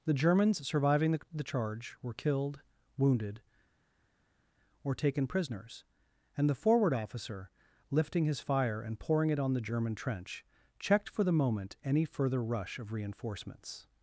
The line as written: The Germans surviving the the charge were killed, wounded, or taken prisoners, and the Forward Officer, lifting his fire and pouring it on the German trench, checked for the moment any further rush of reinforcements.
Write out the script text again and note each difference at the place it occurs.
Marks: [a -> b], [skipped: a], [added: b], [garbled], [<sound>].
The Germans surviving the the charge were killed, wounded, or taken prisoners, and the Forward Officer, lifting his fire and pouring it on the German trench, checked for the moment any further rush of reinforcements.